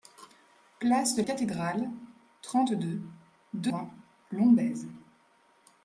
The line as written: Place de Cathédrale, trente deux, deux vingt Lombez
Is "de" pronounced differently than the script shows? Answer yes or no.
no